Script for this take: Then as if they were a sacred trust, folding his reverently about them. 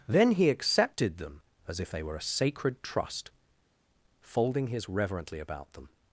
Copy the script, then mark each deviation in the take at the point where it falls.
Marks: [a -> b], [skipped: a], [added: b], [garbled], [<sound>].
Then [added: he accepted them] as if they were a sacred trust, folding his reverently about them.